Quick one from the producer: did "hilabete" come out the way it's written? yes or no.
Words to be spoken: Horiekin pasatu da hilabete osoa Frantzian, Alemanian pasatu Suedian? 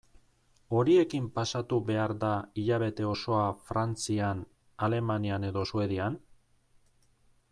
yes